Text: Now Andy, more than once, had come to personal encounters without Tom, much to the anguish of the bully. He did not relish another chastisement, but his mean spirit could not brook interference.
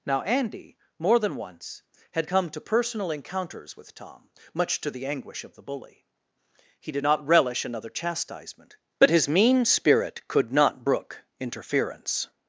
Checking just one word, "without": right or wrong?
wrong